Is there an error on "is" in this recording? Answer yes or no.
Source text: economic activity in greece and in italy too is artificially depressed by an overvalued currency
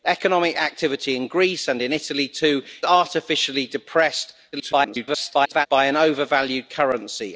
yes